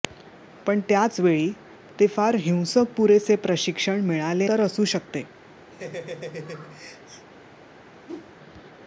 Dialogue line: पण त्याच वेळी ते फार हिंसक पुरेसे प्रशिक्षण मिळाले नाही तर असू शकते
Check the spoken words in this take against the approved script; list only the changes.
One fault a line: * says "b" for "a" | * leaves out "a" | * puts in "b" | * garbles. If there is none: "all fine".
* leaves out "नाही"